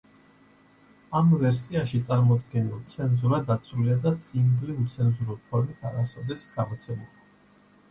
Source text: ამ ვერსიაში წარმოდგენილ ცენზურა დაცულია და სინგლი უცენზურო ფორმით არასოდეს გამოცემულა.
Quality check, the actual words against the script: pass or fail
pass